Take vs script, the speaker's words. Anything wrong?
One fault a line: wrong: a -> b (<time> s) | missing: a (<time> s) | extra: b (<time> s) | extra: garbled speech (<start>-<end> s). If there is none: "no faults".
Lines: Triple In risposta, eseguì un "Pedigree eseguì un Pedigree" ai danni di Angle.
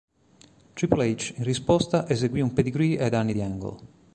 extra: H (1.1 s)
missing: eseguì un Pedigree (3.0 s)